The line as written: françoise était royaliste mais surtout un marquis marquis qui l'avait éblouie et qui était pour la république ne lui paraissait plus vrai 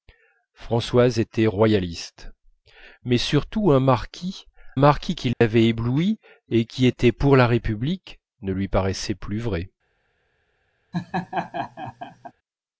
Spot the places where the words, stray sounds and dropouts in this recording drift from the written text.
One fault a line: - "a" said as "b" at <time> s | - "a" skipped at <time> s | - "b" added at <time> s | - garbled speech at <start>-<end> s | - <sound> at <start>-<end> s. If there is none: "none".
- dropout at 5.3-5.4 s
- laugh at 10.9-12.3 s